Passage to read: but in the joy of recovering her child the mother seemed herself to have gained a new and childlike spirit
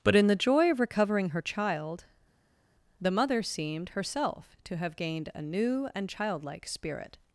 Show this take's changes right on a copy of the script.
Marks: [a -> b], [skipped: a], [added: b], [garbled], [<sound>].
but in the joy of recovering her child the mother seemed herself to have gained a new and childlike spirit